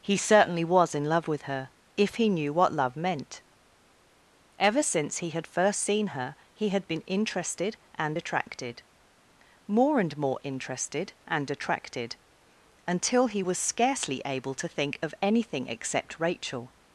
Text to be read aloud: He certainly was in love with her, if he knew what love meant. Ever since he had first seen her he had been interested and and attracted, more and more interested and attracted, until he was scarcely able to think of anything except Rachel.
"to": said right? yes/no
yes